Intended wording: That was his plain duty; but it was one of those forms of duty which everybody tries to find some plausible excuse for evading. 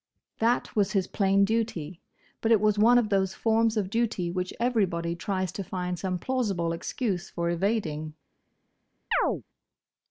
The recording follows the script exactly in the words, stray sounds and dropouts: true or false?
false